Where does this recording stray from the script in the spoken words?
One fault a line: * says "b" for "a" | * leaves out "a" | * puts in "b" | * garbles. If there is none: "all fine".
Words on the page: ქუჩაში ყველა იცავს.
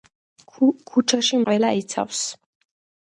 all fine